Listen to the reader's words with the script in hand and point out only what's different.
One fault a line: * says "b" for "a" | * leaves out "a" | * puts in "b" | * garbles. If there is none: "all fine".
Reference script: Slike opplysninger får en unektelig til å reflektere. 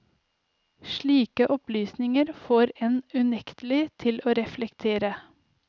all fine